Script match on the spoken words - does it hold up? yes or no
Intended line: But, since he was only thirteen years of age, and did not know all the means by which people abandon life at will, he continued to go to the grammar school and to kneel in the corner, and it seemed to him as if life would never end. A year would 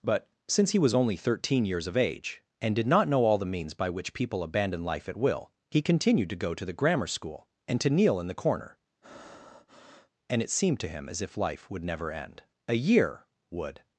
yes